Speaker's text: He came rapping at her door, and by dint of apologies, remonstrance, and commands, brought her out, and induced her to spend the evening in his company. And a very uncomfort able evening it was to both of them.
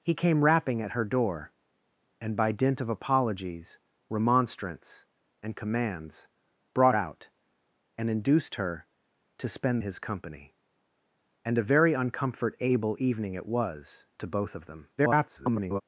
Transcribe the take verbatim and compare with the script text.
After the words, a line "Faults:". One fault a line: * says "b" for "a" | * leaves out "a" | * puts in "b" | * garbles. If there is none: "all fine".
He came rapping at her door, and by dint of apologies, remonstrance, and commands, brought out, and induced her to spend his company. And a very uncomfort able evening it was to both of them. [garbled]
Faults:
* leaves out "her"
* leaves out "the evening in"
* garbles